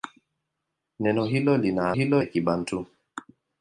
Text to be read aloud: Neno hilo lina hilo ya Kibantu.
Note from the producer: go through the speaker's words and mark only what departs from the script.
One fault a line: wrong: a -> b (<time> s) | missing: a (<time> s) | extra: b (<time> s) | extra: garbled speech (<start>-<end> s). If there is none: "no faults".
no faults